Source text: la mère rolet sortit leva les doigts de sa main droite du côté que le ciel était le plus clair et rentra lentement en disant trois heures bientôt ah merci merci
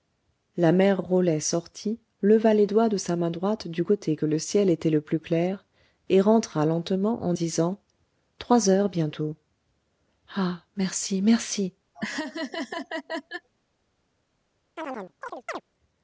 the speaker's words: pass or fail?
pass